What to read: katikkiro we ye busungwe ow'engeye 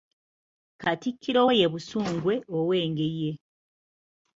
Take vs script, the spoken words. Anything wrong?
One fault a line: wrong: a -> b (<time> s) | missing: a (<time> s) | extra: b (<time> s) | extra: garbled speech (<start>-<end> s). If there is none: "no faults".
no faults